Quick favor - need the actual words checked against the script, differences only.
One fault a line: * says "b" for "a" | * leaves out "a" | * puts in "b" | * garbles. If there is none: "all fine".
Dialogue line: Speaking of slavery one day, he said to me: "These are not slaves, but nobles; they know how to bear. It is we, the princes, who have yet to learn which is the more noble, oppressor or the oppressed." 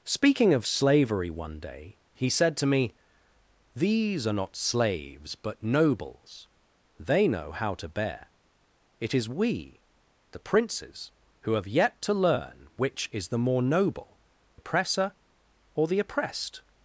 all fine